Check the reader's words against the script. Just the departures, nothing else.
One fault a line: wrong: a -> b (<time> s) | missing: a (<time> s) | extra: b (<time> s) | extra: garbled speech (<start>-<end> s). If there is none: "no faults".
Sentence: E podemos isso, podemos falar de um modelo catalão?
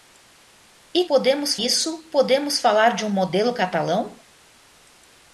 no faults